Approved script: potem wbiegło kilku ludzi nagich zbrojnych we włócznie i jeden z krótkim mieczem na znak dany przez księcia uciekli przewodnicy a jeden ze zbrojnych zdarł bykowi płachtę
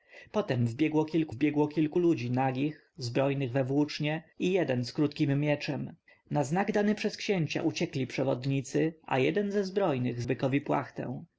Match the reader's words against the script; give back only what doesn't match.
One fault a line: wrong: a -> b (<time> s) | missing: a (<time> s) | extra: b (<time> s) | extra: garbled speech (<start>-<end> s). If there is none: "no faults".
extra: wbiegło kilku (1.3 s)
missing: zdarł (10.2 s)